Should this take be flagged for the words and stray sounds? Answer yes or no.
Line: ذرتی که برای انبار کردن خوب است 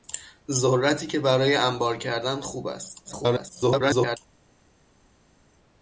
yes